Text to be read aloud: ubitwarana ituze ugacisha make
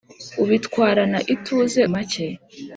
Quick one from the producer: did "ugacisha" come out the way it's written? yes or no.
no